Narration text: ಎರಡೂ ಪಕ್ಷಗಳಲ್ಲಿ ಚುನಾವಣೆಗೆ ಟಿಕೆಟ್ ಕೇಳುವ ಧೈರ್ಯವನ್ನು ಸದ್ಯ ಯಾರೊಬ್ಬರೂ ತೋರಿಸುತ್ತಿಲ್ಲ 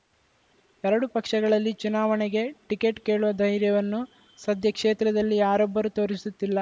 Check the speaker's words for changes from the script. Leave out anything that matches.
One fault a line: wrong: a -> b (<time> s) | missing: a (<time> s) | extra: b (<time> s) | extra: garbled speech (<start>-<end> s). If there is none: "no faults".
extra: ಕ್ಷೇತ್ರದಲ್ಲಿ (4.7 s)